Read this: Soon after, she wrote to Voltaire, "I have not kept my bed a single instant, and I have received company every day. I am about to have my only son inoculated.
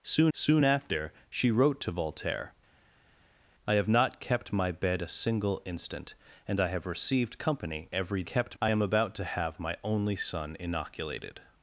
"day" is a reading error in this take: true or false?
true